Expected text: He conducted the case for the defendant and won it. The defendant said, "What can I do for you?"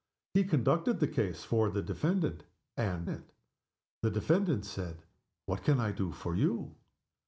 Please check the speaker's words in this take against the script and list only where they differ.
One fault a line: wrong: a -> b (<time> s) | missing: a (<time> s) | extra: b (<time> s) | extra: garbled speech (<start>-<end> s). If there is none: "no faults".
missing: won (3.1 s)